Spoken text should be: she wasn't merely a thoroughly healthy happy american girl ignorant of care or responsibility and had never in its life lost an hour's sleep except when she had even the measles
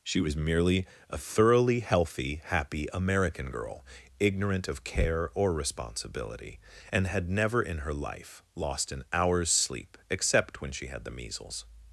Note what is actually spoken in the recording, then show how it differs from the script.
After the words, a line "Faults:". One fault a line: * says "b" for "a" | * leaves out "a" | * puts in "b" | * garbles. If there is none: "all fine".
she was merely a thoroughly healthy happy american girl ignorant of care or responsibility and had never in her life lost an hour's sleep except when she had the measles
Faults:
* says "was" for "wasn't"
* says "her" for "its"
* leaves out "even"